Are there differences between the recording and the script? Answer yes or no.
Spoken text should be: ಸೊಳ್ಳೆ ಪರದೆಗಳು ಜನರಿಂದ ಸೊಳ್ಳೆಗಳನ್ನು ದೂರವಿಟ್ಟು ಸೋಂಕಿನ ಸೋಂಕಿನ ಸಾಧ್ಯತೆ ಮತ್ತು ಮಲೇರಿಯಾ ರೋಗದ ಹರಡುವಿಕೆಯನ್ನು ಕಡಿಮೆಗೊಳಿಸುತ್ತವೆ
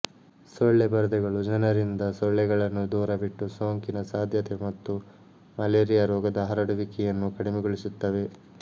yes